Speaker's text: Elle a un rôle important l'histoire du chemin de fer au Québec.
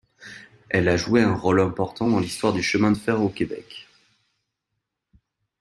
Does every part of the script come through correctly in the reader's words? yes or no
no